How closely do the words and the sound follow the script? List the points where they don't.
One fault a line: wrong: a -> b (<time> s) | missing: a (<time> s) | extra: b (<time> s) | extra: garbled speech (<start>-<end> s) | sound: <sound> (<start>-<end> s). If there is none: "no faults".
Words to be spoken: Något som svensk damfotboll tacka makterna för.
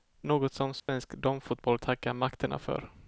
sound: dropout (0.8-0.9 s)